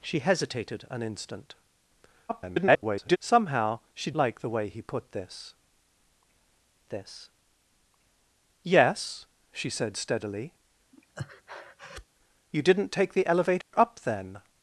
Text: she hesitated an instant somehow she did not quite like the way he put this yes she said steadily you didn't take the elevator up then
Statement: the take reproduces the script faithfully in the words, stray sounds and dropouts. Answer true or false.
false